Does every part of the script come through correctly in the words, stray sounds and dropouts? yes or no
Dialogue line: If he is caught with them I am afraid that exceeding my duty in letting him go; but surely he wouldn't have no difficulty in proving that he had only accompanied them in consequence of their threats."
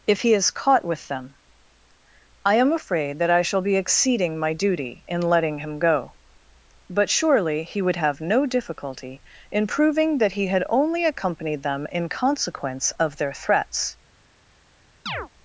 no